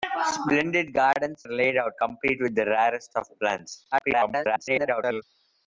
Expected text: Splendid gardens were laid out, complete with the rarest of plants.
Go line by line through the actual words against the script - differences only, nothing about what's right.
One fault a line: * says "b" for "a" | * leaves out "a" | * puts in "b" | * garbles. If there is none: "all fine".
* leaves out "were"
* garbles